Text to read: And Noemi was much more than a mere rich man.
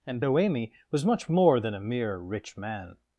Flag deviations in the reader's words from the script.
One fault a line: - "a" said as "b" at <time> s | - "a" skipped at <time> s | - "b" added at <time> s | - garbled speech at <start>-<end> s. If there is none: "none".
none